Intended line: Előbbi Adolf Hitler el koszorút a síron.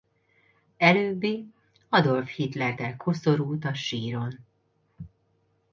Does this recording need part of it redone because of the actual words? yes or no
no